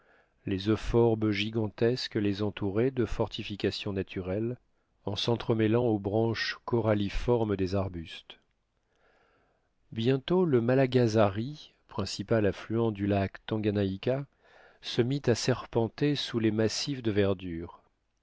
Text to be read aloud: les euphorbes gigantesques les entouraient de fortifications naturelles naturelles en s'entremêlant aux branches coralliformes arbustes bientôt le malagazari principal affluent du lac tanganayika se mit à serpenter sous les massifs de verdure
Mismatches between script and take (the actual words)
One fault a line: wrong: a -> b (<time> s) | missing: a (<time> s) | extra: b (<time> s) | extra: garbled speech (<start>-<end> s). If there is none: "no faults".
missing: naturelles (4.6 s)
extra: des (7.6 s)